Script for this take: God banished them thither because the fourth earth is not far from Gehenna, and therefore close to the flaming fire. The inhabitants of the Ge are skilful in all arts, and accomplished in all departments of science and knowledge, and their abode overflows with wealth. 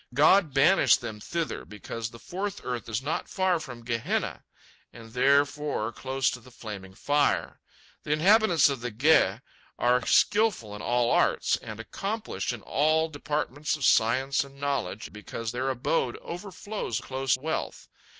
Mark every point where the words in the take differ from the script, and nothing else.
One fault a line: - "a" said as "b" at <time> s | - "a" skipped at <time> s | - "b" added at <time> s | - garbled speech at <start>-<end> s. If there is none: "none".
- "and" said as "because" at 15.1 s
- "with" said as "close" at 17.0 s